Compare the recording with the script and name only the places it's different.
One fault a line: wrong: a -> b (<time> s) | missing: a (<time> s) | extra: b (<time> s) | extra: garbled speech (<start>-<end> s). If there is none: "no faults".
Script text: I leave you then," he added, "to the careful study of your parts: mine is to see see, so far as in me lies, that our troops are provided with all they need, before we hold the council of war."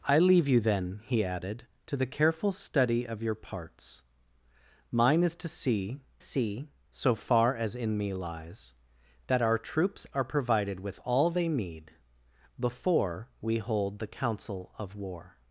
no faults